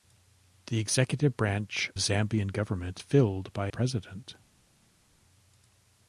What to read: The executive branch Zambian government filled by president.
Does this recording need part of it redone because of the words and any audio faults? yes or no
no